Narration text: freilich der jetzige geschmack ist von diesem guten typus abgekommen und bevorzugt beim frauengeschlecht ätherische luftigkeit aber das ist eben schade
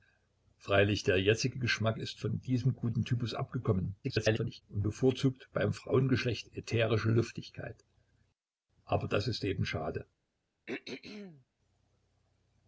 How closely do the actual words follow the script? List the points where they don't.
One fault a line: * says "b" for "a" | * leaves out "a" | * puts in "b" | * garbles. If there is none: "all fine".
* garbles